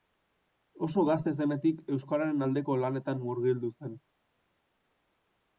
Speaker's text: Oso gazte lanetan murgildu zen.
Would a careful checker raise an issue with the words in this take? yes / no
yes